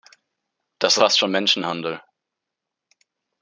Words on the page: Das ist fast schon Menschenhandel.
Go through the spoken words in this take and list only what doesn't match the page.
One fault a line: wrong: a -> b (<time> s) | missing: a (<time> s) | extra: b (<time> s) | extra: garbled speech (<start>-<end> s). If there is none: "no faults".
missing: ist (1.0 s)